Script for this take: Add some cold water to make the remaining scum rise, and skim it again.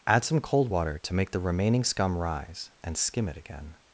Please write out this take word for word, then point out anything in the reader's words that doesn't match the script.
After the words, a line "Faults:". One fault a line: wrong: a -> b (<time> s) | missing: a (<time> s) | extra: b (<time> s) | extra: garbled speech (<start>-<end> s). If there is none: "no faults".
Add some cold water to make the remaining scum rise, and skim it again.
Faults:
no faults